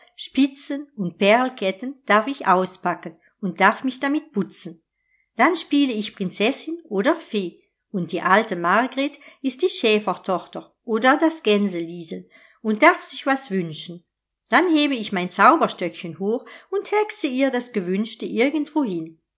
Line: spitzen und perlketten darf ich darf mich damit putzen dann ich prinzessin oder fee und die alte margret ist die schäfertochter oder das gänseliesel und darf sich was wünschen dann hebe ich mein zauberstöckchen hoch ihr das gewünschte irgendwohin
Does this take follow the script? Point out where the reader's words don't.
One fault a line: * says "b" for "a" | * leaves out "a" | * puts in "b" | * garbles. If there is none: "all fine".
* puts in "auspacken und"
* puts in "spiele"
* puts in "und hexe"